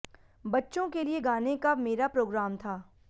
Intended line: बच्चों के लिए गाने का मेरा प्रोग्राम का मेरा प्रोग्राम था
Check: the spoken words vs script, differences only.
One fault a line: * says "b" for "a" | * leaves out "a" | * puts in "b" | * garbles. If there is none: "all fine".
* leaves out "का मेरा प्रोग्राम"